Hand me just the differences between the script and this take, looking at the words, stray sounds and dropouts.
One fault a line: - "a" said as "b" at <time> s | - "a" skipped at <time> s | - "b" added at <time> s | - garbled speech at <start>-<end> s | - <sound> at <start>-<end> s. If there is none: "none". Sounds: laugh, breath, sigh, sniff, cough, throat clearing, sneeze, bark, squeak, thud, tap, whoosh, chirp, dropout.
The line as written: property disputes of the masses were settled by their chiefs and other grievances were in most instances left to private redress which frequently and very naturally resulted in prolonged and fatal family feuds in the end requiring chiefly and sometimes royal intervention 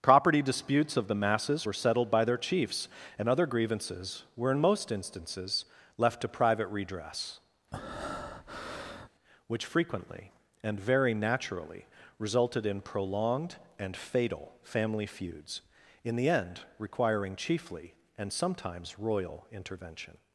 - breath at 7.7-9.1 s